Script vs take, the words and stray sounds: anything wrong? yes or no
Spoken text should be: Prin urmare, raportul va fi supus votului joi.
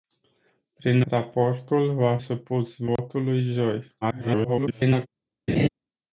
yes